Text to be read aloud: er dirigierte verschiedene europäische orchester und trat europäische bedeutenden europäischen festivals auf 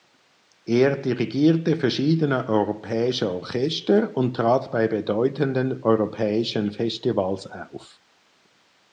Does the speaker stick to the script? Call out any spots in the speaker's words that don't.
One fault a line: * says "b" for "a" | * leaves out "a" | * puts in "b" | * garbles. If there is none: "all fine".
* says "bei" for "europäische"